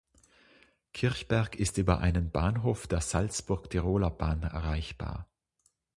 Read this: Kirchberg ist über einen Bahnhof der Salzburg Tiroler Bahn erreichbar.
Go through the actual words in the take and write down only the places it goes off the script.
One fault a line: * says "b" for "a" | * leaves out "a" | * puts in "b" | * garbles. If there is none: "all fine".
all fine